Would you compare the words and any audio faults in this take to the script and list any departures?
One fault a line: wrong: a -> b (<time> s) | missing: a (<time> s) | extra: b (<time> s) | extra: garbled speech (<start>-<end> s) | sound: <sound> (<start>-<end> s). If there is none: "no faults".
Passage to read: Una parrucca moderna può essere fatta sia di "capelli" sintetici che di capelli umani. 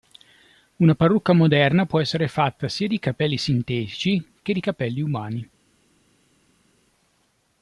no faults